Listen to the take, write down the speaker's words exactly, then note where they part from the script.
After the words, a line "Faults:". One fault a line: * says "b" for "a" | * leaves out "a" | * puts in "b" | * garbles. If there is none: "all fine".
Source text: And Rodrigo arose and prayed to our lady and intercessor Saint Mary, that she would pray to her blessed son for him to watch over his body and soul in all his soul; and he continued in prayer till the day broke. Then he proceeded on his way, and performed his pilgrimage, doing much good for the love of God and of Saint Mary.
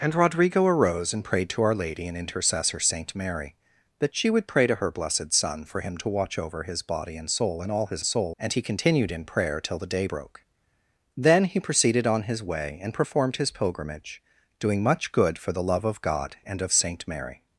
And Rodrigo arose and prayed to our lady and intercessor Saint Mary, that she would pray to her blessed son for him to watch over his body and soul in all his soul; and he continued in prayer till the day broke. Then he proceeded on his way, and performed his pilgrimage, doing much good for the love of God and of Saint Mary.
Faults:
all fine